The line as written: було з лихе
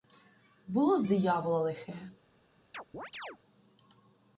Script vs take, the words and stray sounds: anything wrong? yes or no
yes